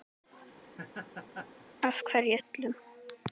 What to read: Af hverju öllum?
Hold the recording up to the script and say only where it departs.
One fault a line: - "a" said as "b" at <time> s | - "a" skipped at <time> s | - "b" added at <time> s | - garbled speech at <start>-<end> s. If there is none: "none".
none